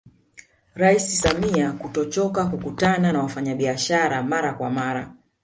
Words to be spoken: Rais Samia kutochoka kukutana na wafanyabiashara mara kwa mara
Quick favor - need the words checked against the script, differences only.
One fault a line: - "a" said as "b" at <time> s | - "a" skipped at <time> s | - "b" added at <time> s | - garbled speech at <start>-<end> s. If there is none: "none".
none